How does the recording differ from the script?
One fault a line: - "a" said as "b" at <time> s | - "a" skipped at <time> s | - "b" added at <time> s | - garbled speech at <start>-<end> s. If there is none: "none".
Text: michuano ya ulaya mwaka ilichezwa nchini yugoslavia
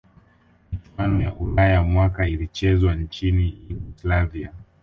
none